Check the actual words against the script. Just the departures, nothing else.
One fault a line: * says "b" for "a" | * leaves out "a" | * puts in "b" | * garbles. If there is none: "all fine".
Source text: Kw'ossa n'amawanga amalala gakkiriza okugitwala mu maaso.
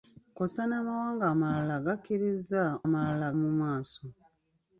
* says "amalala" for "okugitwala"